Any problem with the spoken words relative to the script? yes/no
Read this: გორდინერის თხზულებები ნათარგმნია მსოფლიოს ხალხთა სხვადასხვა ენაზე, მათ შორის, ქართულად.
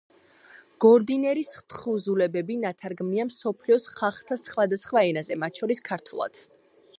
no